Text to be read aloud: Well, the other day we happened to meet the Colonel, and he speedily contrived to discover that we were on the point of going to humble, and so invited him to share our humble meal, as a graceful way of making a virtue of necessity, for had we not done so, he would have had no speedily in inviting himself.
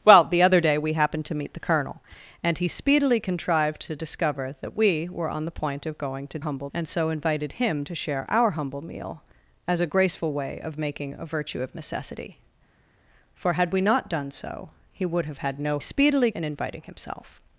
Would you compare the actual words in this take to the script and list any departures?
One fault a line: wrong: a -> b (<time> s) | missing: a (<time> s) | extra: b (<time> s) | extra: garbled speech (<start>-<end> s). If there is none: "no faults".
no faults